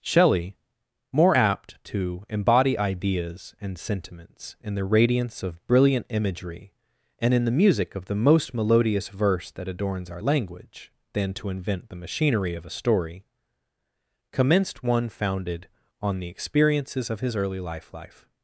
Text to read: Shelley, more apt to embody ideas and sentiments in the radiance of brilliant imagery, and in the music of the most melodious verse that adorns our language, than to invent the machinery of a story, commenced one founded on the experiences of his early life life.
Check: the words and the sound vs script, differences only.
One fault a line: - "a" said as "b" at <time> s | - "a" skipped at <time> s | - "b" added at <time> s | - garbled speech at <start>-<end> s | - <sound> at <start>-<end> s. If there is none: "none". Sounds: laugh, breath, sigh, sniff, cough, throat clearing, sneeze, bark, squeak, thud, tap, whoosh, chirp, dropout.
none